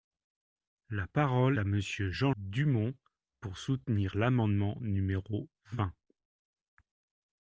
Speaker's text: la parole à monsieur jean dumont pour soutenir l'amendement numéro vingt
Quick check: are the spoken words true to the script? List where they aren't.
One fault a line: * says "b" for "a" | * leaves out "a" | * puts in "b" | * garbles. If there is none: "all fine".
all fine